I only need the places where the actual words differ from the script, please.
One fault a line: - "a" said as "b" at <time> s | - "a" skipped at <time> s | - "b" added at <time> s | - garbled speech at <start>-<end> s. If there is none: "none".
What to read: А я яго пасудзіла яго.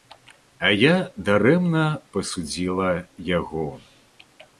- "яго" said as "дарэмна" at 1.3 s